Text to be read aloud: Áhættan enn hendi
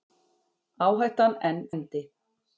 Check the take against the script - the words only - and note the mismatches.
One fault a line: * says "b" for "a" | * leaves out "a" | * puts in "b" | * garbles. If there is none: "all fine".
all fine